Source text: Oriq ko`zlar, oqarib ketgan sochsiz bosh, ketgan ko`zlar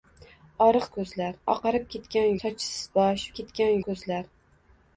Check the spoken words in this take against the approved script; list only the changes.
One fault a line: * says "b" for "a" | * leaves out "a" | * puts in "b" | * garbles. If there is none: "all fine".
all fine